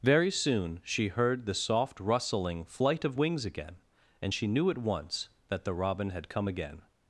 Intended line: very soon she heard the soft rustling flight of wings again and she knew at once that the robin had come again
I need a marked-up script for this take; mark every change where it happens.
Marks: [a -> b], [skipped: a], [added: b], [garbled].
very soon she heard the soft rustling flight of wings again and she knew at once that the robin had come again